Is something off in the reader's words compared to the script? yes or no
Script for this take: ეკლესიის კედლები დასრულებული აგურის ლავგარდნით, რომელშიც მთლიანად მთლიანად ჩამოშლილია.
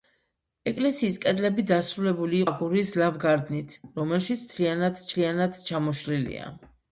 no